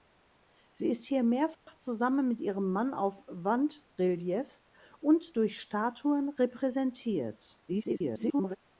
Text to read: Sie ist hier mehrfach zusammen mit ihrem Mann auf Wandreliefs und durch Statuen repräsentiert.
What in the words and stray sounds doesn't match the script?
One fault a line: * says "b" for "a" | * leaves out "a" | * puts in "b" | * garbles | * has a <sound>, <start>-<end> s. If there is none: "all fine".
* has a dropout, 1.5-1.7 s
* garbles